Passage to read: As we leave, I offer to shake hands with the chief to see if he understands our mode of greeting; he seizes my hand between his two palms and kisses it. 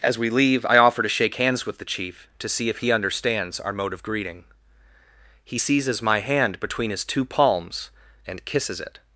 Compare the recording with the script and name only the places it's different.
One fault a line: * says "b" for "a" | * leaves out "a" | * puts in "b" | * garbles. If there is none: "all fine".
all fine